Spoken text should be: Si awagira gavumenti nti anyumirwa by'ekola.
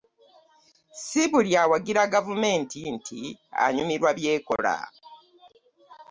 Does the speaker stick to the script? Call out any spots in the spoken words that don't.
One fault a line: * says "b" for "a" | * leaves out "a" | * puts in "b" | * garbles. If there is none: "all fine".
* puts in "buli"